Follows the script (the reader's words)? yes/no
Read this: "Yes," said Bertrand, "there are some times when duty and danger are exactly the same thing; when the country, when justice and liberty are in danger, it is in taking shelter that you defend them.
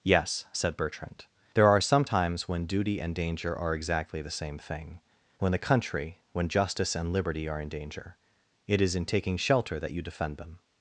yes